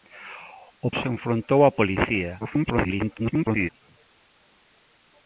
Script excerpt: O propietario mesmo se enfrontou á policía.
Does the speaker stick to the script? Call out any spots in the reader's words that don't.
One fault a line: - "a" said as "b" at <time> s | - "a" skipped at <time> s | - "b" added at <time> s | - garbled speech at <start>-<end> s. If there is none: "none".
- "propietario mesmo" skipped at 0.9 s
- garbled speech at 2.4-3.7 s